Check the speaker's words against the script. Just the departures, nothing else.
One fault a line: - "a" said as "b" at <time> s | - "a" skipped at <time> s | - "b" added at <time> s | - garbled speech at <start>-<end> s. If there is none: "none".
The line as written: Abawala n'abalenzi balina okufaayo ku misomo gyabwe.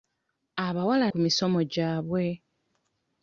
- "n'abalenzi balina okufaayo" skipped at 1.1 s